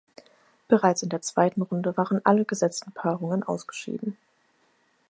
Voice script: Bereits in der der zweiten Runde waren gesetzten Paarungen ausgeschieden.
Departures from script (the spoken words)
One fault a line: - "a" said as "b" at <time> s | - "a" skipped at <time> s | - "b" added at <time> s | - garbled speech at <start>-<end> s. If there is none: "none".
- "der" skipped at 1.2 s
- "alle" added at 2.2 s